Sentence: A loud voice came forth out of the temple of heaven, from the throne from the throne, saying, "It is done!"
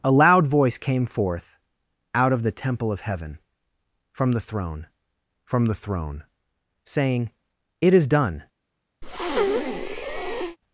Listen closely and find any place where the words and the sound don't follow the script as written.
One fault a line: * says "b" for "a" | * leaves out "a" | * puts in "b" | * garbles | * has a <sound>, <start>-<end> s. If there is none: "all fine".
* has a breath, 9.0-10.6 s